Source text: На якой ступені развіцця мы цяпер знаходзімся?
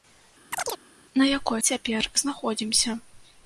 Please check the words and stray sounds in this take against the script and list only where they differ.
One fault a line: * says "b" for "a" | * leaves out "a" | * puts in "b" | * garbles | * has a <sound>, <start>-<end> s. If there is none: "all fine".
* has a chirp, 0.5-0.8 s
* leaves out "ступені развіцця мы"